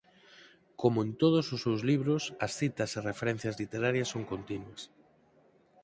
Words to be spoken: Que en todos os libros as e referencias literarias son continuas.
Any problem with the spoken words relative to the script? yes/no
yes